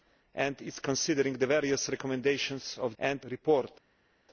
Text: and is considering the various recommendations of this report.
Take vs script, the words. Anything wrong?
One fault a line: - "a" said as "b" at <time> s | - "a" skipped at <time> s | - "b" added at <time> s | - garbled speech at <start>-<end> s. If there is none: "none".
- "this" said as "and" at 3.0 s